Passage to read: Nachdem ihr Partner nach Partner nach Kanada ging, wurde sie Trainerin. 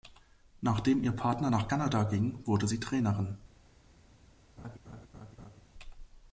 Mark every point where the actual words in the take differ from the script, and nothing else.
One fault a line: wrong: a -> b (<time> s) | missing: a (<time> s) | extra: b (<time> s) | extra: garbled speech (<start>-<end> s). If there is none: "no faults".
missing: Partner nach (1.7 s)